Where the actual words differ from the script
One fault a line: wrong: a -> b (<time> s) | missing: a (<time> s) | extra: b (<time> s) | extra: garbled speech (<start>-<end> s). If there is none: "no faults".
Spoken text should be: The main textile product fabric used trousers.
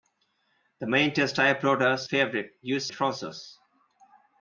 no faults